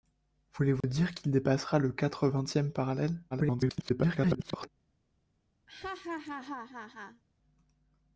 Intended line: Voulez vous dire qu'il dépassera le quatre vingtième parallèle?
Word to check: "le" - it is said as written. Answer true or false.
true